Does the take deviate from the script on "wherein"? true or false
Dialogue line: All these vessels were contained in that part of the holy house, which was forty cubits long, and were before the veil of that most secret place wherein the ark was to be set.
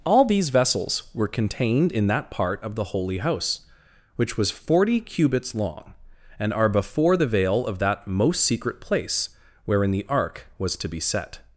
false